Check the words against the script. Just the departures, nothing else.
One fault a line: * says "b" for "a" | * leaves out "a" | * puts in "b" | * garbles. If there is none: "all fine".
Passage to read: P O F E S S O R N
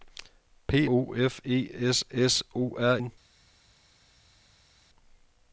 all fine